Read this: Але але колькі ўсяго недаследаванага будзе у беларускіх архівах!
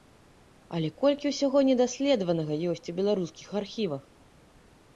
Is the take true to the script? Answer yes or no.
no